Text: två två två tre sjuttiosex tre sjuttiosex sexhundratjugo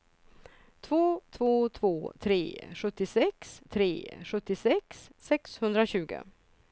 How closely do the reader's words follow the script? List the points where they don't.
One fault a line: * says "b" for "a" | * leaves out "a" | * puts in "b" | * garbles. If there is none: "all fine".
all fine